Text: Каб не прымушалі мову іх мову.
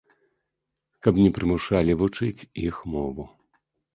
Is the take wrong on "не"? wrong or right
right